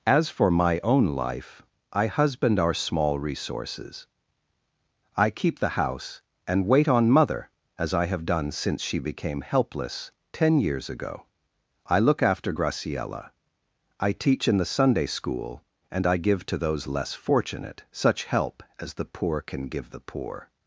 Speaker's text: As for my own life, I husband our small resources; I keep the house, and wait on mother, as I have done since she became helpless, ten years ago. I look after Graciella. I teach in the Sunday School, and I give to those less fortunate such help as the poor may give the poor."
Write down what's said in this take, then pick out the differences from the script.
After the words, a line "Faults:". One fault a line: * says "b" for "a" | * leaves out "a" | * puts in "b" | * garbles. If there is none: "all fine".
As for my own life, I husband our small resources; I keep the house, and wait on mother, as I have done since she became helpless, ten years ago. I look after Graciella. I teach in the Sunday School, and I give to those less fortunate such help as the poor can give the poor."
Faults:
* says "can" for "may"